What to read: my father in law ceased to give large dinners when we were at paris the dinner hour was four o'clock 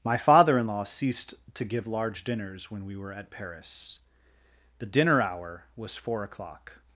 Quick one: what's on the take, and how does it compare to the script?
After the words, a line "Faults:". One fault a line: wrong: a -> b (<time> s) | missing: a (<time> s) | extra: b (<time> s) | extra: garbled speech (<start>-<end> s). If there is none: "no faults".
my father in law ceased to give large dinners when we were at paris the dinner hour was four o'clock
Faults:
no faults